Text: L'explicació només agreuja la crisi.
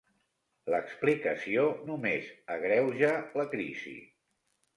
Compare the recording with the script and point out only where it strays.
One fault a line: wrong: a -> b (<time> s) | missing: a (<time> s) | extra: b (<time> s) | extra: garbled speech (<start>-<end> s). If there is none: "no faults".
no faults